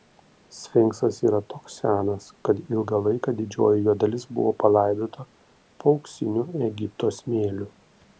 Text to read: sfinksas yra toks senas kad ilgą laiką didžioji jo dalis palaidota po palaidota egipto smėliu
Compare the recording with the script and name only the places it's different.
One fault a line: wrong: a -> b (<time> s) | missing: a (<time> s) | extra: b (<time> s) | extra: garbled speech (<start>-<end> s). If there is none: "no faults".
extra: buvo (4.4 s)
wrong: palaidota -> auksiniu (6.0 s)